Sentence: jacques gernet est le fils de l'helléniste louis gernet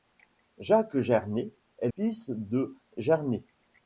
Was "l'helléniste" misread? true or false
true